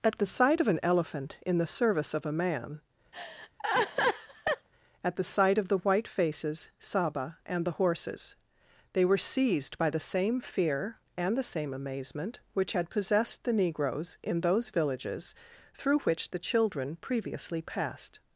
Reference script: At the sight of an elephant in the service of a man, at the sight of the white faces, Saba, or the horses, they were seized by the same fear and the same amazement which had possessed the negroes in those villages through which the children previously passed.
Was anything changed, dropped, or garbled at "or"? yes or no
yes